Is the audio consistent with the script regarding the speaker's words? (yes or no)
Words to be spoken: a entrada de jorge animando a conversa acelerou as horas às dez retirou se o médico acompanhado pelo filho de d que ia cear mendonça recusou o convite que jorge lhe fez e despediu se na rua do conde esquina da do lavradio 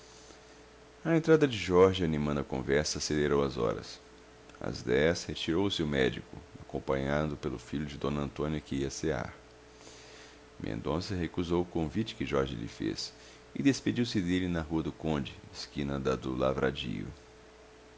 no